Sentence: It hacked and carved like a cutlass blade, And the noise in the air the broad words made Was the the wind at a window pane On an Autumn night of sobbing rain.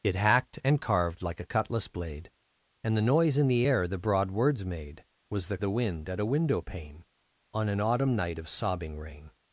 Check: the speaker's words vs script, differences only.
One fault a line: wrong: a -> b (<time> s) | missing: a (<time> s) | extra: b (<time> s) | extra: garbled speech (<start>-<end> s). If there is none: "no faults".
no faults